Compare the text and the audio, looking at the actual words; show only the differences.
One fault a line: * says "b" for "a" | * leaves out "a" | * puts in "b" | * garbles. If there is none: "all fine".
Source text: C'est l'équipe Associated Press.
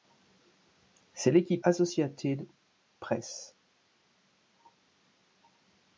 all fine